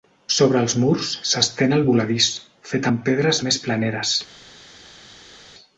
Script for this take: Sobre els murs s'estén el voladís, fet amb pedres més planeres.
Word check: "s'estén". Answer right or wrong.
right